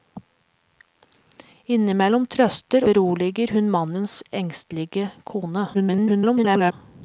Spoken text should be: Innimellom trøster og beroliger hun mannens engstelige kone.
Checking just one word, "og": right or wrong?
wrong